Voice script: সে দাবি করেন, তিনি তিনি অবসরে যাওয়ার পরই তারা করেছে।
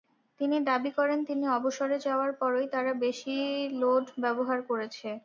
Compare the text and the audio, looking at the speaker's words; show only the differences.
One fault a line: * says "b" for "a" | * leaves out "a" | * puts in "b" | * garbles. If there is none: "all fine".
* says "তিনি" for "সে"
* leaves out "তিনি"
* puts in "বেশি লোড ব্যবহার"